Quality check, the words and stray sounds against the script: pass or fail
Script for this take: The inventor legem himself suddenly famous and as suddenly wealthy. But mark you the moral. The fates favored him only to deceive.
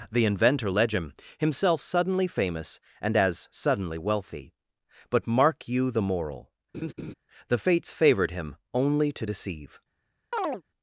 fail